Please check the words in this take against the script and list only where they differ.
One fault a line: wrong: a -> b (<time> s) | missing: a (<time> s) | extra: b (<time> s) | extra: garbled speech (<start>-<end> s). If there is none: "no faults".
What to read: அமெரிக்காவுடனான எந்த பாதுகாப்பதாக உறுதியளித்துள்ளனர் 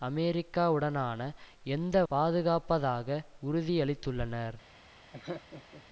no faults